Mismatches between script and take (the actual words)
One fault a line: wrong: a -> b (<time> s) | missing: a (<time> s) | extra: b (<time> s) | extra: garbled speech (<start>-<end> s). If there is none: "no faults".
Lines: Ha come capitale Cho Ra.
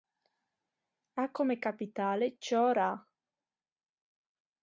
no faults